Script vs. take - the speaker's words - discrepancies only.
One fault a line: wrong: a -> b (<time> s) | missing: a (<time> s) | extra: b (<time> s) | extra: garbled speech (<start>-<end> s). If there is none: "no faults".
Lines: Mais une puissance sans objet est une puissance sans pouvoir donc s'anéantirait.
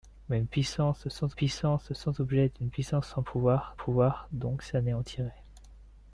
extra: puissance sans (1.3 s)
extra: pouvoir (3.7 s)